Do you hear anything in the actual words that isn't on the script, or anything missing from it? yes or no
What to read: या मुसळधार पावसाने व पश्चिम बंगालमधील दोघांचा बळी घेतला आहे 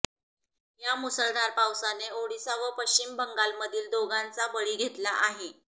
yes